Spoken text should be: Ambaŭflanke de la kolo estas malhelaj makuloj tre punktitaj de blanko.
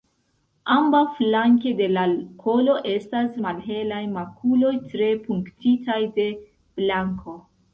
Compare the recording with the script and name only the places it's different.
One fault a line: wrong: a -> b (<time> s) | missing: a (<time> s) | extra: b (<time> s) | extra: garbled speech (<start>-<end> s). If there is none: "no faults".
no faults